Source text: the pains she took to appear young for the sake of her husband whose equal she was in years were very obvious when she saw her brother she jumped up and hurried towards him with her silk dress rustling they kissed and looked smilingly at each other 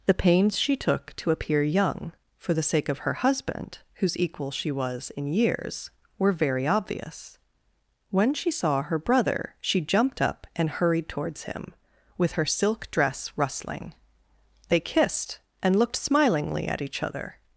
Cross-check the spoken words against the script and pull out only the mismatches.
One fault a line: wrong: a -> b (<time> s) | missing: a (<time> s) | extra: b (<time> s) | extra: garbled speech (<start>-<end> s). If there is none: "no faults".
no faults